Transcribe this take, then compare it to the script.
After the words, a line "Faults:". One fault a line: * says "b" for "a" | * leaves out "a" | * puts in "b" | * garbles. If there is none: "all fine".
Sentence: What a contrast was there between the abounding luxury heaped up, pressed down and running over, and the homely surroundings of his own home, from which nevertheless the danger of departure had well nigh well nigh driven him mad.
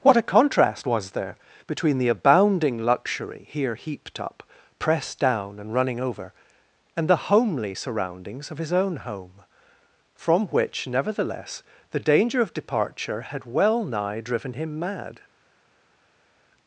What a contrast was there between the abounding luxury here heaped up, pressed down and running over, and the homely surroundings of his own home, from which nevertheless the danger of departure had well nigh driven him mad.
Faults:
* puts in "here"
* leaves out "well nigh"